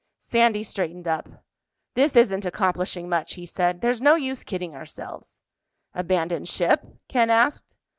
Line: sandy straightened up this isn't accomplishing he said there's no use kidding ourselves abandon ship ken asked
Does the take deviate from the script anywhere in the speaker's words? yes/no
yes